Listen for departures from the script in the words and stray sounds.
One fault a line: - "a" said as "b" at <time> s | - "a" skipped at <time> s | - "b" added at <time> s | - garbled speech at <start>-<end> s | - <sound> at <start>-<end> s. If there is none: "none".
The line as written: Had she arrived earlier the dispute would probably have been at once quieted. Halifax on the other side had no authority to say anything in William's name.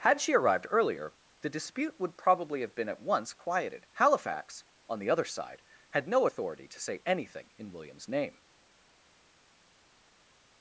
none